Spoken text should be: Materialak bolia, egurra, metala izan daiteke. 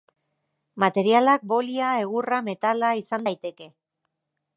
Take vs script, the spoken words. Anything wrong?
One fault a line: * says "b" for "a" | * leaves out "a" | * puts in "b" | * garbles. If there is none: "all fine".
all fine